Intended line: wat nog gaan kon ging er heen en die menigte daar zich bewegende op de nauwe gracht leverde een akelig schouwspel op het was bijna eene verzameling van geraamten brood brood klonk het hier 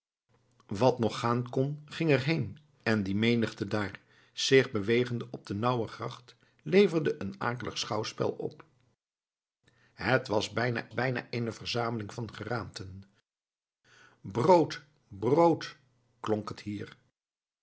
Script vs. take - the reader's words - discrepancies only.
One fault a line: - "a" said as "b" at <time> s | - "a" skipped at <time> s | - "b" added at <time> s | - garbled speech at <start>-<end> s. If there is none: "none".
- "bijna" added at 10.9 s